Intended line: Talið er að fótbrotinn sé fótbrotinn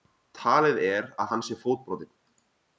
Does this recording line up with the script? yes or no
no